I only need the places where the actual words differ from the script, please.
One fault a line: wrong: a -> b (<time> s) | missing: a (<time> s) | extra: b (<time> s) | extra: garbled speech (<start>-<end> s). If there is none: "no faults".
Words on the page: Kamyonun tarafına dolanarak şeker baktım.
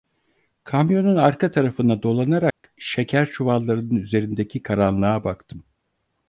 extra: arka (1.1 s)
extra: çuvallarının üzerindeki karanlığa (3.3 s)